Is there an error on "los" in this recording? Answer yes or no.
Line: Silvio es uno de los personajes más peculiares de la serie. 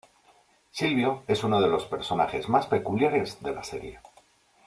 no